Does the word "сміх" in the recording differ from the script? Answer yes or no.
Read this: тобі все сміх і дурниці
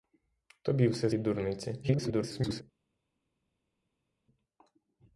yes